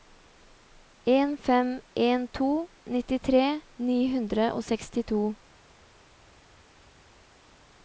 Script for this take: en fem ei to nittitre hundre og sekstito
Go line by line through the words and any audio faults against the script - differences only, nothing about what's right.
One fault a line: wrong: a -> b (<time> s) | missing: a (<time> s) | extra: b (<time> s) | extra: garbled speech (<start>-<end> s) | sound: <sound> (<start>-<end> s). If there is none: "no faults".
wrong: ei -> en (1.9 s)
extra: ni (3.8 s)